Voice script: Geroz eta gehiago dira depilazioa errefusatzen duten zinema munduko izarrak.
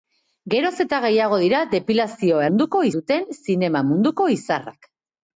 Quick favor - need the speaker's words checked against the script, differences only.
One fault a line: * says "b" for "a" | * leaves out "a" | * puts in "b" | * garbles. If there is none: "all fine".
* says "munduko" for "errefusatzen"